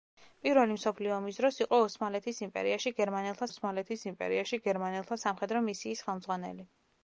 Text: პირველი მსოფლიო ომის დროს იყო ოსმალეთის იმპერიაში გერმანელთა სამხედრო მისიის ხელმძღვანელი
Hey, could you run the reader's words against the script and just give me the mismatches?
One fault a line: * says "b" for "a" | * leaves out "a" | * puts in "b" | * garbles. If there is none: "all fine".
* puts in "ოსმალეთის იმპერიაში გერმანელთა"